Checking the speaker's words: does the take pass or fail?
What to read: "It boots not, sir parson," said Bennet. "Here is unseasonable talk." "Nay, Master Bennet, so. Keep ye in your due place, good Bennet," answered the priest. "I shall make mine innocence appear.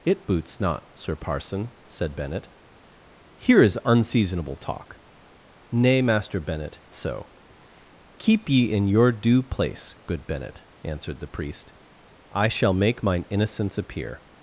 pass